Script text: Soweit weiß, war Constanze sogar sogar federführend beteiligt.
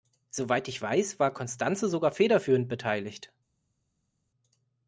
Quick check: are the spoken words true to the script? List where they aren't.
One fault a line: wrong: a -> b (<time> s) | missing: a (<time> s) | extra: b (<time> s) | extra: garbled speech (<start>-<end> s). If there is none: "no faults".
extra: ich (0.7 s)
missing: sogar (2.1 s)